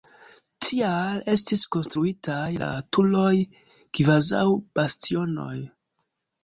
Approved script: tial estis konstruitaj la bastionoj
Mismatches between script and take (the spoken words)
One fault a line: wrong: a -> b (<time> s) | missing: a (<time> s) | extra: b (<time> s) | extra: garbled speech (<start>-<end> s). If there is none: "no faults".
extra: turoj kvazaŭ (3.0 s)